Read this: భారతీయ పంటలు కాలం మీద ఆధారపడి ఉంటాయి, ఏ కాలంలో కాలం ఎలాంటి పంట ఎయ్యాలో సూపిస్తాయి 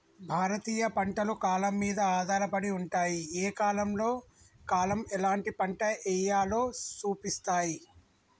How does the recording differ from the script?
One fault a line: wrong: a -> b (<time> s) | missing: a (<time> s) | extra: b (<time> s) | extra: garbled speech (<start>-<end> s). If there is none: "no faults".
no faults